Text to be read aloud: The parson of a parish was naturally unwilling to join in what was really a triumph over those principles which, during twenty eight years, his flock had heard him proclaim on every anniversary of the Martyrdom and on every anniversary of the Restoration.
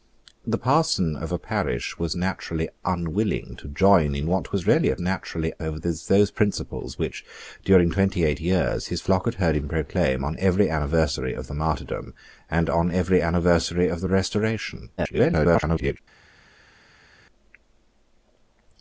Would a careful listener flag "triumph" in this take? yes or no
yes